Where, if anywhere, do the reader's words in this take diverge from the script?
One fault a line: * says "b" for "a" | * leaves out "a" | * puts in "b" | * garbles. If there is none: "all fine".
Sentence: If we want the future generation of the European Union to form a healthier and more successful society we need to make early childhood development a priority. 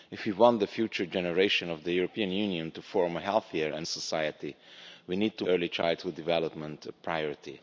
* leaves out "more successful"
* leaves out "make"